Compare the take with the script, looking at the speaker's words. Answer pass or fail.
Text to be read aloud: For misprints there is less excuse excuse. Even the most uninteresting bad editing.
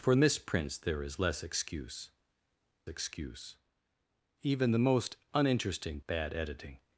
pass